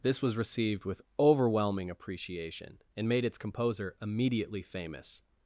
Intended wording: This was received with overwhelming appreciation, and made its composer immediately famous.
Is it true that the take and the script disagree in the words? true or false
false